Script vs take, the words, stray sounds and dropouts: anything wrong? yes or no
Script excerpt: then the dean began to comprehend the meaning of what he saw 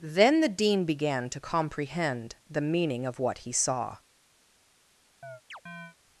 yes